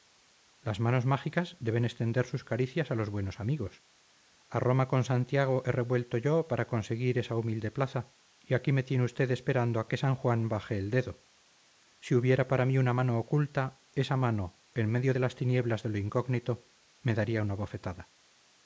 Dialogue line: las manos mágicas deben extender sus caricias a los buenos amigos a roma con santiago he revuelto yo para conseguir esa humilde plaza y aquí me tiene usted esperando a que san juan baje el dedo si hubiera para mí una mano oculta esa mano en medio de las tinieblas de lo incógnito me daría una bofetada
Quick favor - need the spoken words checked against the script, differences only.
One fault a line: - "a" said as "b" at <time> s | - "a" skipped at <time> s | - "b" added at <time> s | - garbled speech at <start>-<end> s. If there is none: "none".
none